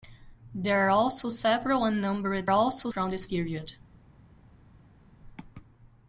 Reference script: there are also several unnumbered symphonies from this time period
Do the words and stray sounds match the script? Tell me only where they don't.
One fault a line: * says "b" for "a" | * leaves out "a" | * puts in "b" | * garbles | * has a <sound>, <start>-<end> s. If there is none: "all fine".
* says "also" for "symphonies"
* leaves out "time"